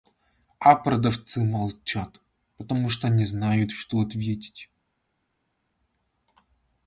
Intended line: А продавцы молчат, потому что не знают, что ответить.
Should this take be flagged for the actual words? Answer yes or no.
no